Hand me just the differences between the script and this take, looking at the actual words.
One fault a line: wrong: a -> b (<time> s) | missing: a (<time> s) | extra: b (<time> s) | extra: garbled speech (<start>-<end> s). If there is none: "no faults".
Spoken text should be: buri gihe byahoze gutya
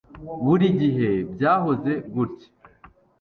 no faults